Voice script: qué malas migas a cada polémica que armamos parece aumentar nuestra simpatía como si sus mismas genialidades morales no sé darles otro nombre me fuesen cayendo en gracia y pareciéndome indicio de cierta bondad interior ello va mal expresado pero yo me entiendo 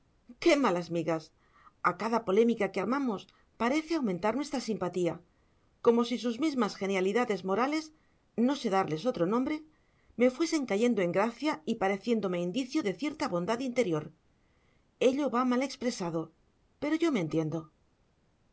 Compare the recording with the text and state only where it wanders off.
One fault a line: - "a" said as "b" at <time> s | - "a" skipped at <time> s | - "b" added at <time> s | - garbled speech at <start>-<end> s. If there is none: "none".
none